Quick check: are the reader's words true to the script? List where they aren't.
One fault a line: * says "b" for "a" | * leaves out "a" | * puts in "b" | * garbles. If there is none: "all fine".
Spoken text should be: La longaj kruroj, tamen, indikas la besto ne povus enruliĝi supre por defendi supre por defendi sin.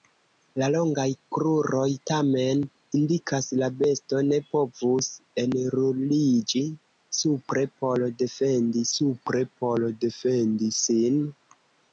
all fine